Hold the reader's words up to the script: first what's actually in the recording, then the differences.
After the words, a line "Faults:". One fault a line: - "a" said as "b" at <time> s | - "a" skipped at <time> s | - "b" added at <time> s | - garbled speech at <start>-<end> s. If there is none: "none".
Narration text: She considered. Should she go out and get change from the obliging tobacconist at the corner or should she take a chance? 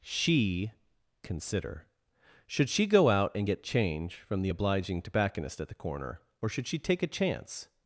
She consider. Should she go out and get change from the obliging tobacconist at the corner or should she take a chance?
Faults:
- "considered" said as "consider" at 1.2 s